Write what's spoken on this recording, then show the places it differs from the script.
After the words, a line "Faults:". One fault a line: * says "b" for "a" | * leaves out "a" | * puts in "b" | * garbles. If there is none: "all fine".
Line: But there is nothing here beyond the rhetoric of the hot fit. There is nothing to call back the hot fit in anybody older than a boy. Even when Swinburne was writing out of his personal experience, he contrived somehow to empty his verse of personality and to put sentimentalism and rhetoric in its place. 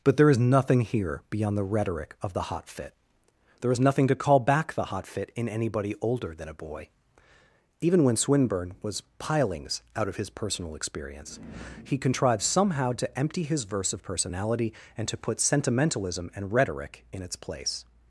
But there is nothing here beyond the rhetoric of the hot fit. There is nothing to call back the hot fit in anybody older than a boy. Even when Swinburne was pilings out of his personal experience, he contrived somehow to empty his verse of personality and to put sentimentalism and rhetoric in its place.
Faults:
* says "pilings" for "writing"